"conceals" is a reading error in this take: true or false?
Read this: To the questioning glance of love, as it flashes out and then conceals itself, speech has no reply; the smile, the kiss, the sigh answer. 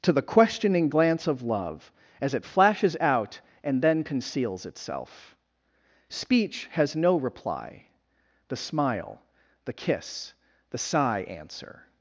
false